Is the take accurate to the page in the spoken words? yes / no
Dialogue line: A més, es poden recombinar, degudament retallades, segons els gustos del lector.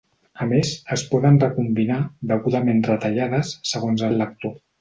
no